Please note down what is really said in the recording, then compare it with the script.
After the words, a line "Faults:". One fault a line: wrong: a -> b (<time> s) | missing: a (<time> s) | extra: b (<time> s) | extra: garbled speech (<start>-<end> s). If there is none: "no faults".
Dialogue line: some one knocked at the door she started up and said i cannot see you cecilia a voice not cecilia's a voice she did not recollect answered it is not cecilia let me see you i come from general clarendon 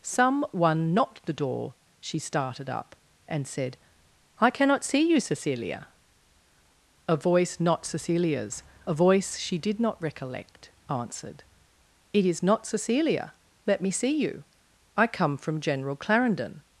some one knocked the door she started up and said i cannot see you cecilia a voice not cecilia's a voice she did not recollect answered it is not cecilia let me see you i come from general clarendon
Faults:
missing: at (1.2 s)